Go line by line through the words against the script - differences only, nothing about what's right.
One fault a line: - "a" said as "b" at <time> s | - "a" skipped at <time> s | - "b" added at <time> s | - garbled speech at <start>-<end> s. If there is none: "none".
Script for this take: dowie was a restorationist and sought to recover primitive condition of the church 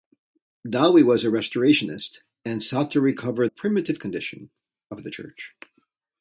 none